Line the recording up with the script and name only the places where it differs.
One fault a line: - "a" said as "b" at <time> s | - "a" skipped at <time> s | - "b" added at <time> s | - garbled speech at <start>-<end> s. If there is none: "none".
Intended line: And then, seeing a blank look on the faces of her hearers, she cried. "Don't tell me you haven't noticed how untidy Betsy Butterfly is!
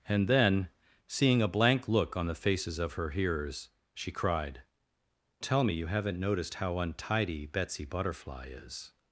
- "Don't" skipped at 4.6 s